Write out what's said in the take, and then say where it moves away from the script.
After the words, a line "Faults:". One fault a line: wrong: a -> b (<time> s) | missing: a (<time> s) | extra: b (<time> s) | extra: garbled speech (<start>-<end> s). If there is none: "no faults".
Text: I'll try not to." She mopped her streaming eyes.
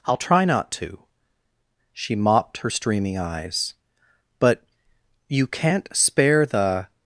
I'll try not to." She mopped her streaming eyes. "But you can't spare the
Faults:
extra: But you can't spare the (4.4 s)